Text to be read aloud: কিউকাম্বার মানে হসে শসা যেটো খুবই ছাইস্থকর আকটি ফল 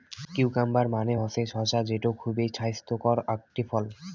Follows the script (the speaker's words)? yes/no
yes